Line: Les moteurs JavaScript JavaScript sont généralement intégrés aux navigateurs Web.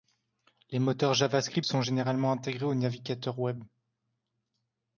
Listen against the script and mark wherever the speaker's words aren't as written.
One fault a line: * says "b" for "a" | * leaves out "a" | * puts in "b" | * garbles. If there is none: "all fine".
* leaves out "JavaScript"